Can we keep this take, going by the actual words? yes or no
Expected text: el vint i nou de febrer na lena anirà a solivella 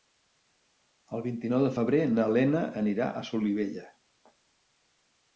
yes